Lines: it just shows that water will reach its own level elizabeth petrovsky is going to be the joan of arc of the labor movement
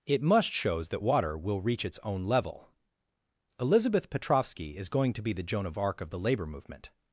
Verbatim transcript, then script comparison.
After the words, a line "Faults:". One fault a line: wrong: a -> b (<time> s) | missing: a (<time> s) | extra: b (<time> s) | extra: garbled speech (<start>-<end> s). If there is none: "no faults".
it must shows that water will reach its own level elizabeth petrovsky is going to be the joan of arc of the labor movement
Faults:
wrong: just -> must (0.2 s)